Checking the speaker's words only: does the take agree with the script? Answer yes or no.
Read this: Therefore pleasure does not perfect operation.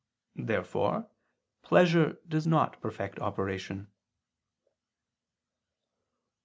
yes